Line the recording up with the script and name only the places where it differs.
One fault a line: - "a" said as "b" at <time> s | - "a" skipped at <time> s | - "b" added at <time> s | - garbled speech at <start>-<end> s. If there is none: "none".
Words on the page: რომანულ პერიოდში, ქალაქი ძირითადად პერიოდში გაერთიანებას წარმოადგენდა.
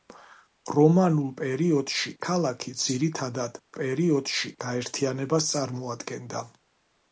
none